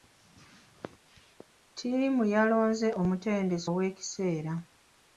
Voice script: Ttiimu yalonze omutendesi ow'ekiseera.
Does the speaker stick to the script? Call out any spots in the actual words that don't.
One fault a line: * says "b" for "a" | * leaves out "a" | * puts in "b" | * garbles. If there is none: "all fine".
all fine